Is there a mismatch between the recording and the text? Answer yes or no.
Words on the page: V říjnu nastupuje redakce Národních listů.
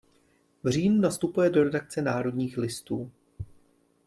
yes